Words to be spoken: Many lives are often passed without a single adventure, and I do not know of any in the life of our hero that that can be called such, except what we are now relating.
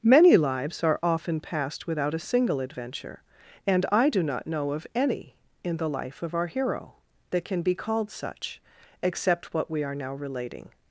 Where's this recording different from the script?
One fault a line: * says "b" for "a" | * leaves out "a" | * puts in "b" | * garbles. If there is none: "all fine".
* leaves out "that"